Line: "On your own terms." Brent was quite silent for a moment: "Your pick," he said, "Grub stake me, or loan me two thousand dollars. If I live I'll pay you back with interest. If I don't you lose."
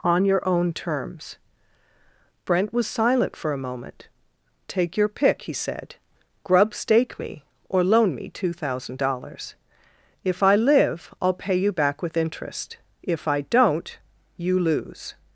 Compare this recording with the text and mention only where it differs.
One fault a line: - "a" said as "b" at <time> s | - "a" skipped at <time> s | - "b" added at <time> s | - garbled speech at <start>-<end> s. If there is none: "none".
- "quite" skipped at 2.9 s
- "Take" added at 4.7 s